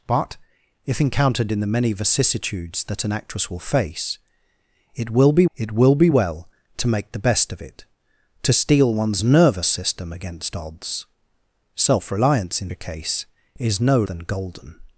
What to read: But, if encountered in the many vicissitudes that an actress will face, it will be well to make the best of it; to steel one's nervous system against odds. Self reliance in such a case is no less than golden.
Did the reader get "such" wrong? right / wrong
wrong